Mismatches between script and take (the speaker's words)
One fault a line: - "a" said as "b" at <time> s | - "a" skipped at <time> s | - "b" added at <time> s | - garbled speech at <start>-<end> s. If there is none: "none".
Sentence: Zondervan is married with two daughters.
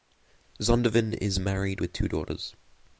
none